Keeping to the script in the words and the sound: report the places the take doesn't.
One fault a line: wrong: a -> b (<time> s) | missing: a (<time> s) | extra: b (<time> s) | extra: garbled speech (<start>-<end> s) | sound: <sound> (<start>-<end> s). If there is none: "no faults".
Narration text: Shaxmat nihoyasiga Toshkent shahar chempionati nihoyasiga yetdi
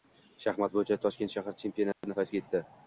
wrong: nihoyasiga -> bo‘yicha (0.8 s)
sound: dropout (1.9-2.0 s)